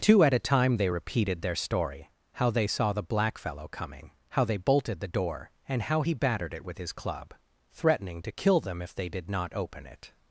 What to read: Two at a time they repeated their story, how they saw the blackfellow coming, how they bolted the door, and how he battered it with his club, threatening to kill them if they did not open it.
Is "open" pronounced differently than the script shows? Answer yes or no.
no